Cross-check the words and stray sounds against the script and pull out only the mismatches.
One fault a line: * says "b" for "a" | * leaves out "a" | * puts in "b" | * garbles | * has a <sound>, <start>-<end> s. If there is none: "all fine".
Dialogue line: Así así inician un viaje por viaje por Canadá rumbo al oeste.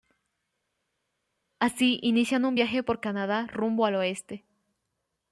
* leaves out "así"
* leaves out "viaje por"